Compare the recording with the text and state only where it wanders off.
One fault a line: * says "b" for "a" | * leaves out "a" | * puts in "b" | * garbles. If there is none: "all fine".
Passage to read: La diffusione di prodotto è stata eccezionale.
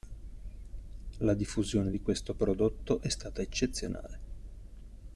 * puts in "questo"